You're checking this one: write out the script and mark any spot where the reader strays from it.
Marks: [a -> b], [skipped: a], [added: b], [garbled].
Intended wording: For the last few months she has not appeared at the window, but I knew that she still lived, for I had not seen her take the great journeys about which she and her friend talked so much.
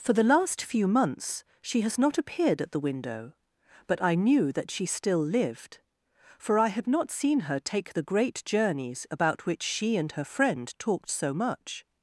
For the last few months she has not appeared at the window, but I knew that she still lived, for I had not seen her take the great journeys about which she and her friend talked so much.